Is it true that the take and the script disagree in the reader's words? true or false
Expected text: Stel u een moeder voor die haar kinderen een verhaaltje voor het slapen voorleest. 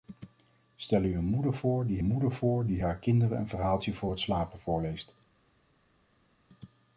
true